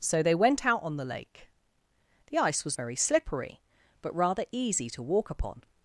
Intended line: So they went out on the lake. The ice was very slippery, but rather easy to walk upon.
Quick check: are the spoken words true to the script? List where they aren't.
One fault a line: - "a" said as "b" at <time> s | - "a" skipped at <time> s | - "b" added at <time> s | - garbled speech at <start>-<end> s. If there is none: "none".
none